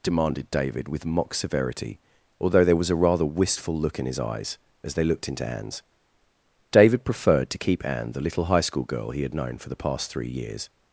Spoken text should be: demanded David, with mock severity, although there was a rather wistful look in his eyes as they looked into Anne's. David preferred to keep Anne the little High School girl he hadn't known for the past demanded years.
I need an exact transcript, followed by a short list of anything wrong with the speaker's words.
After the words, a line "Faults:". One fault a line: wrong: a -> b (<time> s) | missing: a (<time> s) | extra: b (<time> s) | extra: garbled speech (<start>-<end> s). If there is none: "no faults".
demanded David, with mock severity, although there was a rather wistful look in his eyes as they looked into Anne's. David preferred to keep Anne the little High School girl he had known for the past three years.
Faults:
wrong: hadn't -> had (9.2 s)
wrong: demanded -> three (10.1 s)